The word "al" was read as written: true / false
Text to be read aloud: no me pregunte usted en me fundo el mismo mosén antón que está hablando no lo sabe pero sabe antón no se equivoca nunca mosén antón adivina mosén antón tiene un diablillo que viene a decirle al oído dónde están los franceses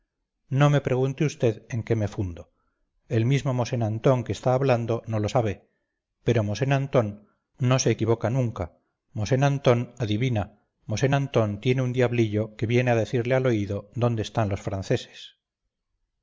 true